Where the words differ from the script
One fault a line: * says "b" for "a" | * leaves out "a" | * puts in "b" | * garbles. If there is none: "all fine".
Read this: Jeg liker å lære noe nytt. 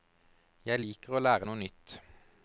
all fine